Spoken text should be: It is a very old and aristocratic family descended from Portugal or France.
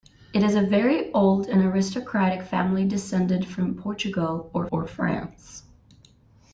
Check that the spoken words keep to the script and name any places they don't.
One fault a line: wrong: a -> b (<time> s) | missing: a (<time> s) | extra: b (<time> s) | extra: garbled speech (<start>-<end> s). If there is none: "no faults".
extra: or (4.7 s)